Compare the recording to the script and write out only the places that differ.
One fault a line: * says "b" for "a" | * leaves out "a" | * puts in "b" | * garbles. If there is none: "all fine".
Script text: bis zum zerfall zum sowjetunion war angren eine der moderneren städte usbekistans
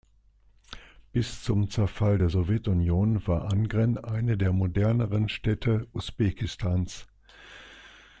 * says "der" for "zum"